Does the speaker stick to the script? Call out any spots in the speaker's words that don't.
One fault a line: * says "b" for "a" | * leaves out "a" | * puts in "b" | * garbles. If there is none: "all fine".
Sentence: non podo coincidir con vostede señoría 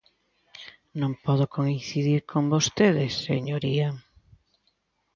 all fine